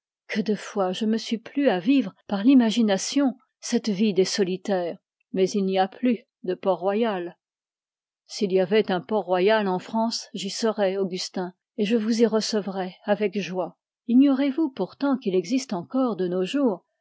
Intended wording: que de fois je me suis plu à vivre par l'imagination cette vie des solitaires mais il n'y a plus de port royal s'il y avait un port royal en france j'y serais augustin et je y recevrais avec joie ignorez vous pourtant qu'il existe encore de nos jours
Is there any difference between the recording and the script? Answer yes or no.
yes